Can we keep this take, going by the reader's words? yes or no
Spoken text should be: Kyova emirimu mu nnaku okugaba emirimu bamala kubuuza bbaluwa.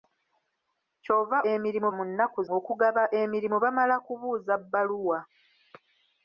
yes